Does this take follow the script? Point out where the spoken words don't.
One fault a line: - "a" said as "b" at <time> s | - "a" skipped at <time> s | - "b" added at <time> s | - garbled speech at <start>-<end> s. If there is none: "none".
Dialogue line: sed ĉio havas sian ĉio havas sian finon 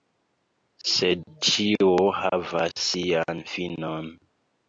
- "ĉio havas sian" skipped at 3.5 s